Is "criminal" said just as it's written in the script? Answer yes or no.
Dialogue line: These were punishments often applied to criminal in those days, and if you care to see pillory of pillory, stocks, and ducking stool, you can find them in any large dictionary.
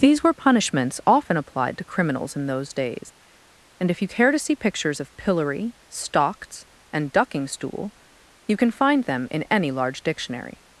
no